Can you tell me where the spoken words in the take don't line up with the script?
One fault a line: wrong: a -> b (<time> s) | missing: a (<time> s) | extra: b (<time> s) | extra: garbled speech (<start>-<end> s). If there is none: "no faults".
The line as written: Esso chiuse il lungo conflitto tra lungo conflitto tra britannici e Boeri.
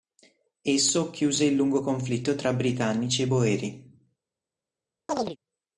missing: lungo conflitto tra (2.5 s)